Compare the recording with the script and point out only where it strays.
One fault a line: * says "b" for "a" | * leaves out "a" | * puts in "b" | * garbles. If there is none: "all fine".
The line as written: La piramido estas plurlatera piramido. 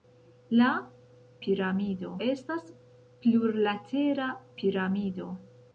all fine